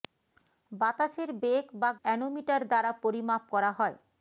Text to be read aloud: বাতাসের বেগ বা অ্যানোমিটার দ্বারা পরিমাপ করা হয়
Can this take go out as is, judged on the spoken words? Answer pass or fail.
pass